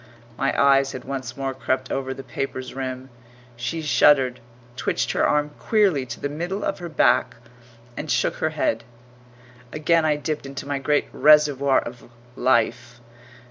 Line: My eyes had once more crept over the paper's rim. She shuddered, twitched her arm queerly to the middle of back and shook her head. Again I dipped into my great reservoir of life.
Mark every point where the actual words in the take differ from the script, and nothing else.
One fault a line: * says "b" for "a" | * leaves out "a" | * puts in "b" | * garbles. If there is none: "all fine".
* puts in "her"